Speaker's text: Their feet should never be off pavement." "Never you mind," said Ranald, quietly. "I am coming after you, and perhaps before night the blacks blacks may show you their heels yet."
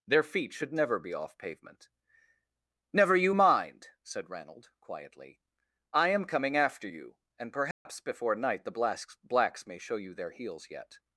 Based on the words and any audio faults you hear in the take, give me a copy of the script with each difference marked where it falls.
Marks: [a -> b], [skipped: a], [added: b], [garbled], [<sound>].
Their feet should never be off pavement." "Never you mind," said Ranald, quietly. "I am coming after you, and perhaps [dropout] before night the blacks blacks may show you their heels yet."